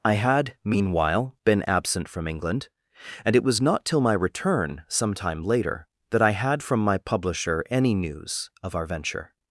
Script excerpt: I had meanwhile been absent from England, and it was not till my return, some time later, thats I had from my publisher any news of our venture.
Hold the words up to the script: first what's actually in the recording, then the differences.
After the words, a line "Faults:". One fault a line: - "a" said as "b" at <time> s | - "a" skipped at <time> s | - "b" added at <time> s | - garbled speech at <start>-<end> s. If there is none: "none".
I had meanwhile been absent from England, and it was not till my return, some time later, that I had from my publisher any news of our venture.
Faults:
- "thats" said as "that" at 6.1 s